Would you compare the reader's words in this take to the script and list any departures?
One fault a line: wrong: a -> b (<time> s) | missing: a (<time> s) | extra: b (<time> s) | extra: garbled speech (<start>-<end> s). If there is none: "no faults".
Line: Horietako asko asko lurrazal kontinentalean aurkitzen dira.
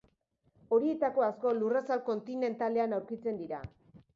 missing: asko (1.5 s)